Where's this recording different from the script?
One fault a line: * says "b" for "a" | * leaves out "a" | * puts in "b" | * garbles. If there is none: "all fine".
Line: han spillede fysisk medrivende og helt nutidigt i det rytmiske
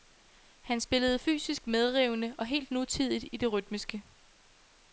all fine